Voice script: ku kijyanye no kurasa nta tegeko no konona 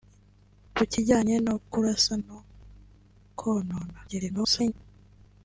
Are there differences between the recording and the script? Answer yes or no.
yes